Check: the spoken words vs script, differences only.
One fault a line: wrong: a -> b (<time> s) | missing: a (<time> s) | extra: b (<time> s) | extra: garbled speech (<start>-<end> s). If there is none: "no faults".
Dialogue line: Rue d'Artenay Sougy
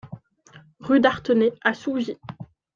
extra: à (1.6 s)